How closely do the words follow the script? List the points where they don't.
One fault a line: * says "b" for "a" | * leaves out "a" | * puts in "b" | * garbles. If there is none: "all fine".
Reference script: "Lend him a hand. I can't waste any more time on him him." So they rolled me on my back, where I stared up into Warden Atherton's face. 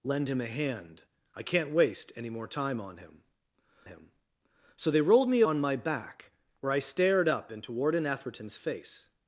all fine